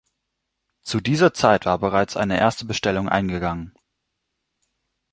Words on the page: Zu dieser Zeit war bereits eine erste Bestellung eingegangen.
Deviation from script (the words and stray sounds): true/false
false